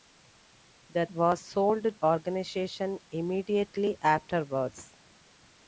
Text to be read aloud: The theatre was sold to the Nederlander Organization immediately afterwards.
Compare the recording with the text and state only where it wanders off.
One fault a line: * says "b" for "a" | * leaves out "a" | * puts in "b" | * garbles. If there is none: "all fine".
* leaves out "theatre"
* leaves out "to the Nederlander"